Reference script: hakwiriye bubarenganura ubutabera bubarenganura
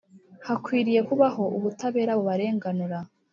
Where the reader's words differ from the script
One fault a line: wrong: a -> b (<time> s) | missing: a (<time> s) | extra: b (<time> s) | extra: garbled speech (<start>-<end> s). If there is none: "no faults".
wrong: bubarenganura -> kubaho (1.1 s)